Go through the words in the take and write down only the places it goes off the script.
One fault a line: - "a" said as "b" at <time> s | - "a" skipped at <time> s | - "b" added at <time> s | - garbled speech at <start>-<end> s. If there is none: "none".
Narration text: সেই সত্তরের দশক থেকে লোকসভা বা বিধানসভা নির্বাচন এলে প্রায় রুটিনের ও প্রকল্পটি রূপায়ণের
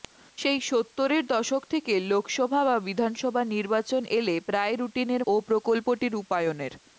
none